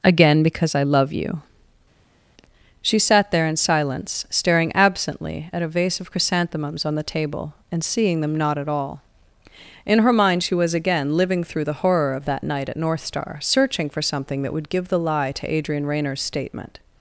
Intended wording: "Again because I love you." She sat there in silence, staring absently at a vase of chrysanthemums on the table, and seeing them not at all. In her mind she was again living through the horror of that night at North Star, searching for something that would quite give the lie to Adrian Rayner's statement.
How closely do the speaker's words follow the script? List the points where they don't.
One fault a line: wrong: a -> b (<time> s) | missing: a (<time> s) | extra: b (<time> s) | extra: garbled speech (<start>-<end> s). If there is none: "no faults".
missing: quite (14.7 s)